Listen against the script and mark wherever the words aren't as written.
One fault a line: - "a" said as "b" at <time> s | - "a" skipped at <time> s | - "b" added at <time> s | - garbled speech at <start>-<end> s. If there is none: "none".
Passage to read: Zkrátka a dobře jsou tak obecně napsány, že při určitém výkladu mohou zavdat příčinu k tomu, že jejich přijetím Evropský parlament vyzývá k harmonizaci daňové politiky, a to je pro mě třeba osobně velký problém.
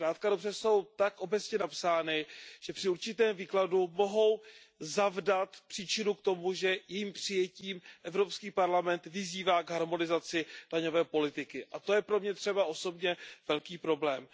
none